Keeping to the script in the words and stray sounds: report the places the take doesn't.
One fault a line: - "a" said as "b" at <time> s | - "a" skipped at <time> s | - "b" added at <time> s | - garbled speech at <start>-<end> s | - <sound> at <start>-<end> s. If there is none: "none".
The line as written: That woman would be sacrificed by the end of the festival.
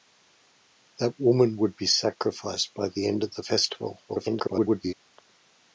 - garbled speech at 4.1-4.9 s